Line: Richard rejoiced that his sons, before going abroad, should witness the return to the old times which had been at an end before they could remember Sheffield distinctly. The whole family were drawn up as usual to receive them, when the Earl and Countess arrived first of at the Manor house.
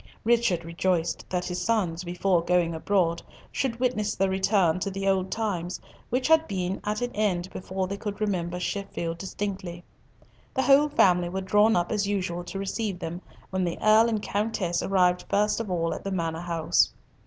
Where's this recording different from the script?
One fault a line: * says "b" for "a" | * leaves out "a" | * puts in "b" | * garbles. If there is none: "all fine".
* puts in "all"